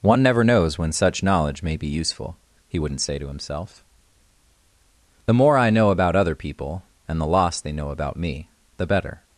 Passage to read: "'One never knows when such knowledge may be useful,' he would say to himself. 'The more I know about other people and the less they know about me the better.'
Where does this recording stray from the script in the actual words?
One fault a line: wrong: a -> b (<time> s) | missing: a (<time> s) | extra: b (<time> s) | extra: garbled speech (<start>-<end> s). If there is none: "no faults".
wrong: would -> wouldn't (2.8 s)
wrong: less -> loss (7.3 s)